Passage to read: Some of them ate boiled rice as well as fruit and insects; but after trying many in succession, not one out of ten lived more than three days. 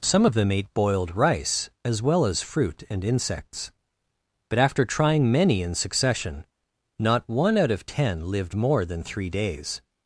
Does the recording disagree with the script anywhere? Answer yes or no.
no